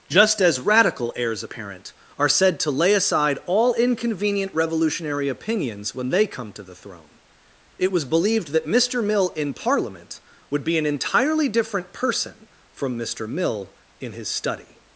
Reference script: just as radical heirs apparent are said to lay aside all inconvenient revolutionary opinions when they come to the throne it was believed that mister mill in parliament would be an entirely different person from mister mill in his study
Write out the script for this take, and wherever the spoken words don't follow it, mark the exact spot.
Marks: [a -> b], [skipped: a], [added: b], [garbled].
just as radical heirs apparent are said to lay aside all inconvenient revolutionary opinions when they come to the throne it was believed that mister mill in parliament would be an entirely different person from mister mill in his study